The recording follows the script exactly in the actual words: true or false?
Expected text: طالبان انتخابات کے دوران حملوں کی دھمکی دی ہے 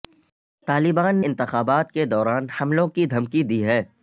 true